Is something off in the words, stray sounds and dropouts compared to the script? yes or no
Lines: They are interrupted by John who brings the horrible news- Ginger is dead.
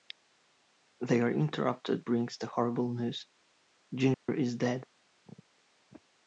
yes